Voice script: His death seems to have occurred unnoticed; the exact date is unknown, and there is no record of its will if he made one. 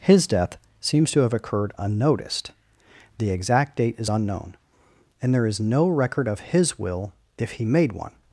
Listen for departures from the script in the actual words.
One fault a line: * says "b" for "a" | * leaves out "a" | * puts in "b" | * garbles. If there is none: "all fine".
* says "his" for "its"